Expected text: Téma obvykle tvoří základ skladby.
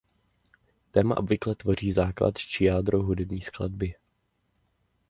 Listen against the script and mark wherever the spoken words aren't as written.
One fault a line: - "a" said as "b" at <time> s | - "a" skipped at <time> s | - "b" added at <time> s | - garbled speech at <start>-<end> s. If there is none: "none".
- "či jádro hudební" added at 2.4 s